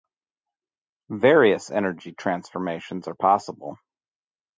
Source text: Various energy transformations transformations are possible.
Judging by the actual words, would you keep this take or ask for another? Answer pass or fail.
fail